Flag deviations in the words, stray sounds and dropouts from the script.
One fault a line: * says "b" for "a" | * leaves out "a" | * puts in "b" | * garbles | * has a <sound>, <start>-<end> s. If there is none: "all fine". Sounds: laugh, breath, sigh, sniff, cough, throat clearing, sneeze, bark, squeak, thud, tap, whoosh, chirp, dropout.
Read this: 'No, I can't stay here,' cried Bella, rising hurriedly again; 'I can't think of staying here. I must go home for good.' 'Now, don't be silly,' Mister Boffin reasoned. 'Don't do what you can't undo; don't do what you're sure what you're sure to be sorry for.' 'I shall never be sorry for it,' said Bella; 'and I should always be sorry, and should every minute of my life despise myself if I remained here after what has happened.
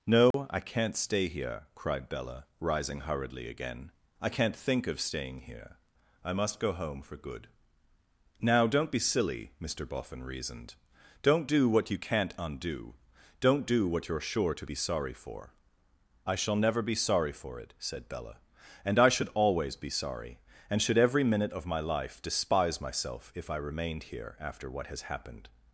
* has a dropout, 0.3-0.3 s
* leaves out "what you're sure"